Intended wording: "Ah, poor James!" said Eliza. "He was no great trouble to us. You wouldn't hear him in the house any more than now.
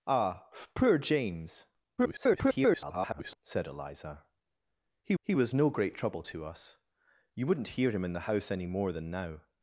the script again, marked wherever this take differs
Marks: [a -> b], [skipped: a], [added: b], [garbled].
"Ah, poor James!" [garbled] said Eliza. "He [added: he] was no great trouble to us. You wouldn't hear him in the house any more than now.